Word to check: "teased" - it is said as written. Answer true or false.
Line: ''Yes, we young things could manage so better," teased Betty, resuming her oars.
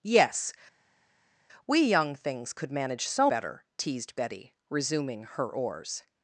true